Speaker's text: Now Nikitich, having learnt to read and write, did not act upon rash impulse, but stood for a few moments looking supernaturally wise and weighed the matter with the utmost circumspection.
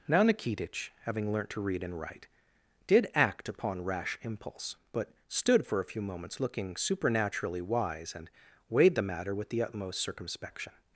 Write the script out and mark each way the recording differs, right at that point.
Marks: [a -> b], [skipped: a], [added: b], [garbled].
Now Nikitich, having learnt to read and write, did [skipped: not] act upon rash impulse, but stood for a few moments looking supernaturally wise and weighed the matter with the utmost circumspection.